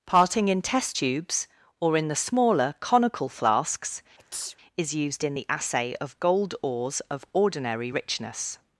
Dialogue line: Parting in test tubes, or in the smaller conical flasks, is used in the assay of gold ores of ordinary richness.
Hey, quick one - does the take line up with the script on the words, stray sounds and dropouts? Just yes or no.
no